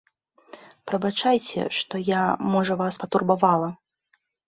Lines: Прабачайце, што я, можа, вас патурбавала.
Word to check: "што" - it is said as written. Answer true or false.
true